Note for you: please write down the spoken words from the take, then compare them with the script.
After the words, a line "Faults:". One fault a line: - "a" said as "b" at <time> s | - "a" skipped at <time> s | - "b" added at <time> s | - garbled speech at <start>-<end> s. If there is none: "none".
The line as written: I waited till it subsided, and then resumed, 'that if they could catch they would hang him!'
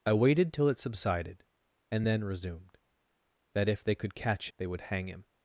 I waited till it subsided, and then resumed, 'that if they could catch they would hang him!'
Faults:
none